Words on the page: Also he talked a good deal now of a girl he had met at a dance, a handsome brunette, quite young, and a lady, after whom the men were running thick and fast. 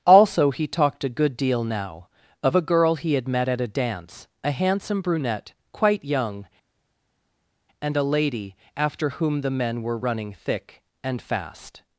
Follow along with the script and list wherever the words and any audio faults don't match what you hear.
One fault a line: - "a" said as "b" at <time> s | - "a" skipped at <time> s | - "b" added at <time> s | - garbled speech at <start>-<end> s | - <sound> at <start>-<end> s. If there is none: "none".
none